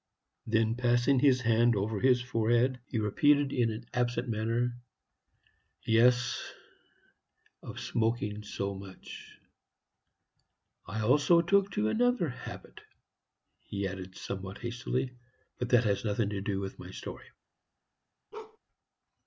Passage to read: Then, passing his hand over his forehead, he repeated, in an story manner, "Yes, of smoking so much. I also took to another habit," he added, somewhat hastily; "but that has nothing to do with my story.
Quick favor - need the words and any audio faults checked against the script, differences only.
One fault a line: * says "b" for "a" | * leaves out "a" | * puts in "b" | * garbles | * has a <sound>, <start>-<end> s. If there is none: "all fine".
* says "absent" for "story"
* has a bark, 18.3-18.6 s